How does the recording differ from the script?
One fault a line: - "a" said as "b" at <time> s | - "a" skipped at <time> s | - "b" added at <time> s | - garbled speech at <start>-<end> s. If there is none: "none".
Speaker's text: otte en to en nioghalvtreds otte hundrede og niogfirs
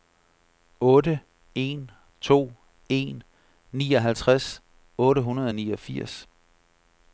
none